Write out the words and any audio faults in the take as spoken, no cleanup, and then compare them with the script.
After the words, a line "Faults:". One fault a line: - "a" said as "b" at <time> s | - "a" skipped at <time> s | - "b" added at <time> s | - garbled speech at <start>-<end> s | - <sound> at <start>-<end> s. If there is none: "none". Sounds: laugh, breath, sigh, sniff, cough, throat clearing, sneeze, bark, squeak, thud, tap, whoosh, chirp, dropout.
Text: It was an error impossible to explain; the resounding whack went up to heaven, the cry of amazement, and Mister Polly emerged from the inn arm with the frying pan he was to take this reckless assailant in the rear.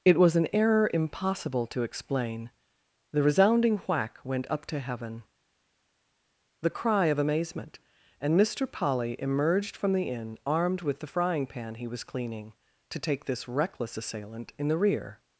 It was an error impossible to explain; the resounding whack went up to heaven, the cry of amazement, and Mister Polly emerged from the inn armed with the frying pan he was cleaning, to take this reckless assailant in the rear.
Faults:
- "arm" said as "armed" at 10.5 s
- "cleaning" added at 12.0 s